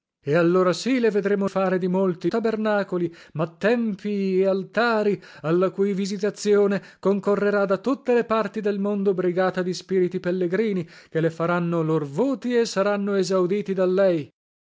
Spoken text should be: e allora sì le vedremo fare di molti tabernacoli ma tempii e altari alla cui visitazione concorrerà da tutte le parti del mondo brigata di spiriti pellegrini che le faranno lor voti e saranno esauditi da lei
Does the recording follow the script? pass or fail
pass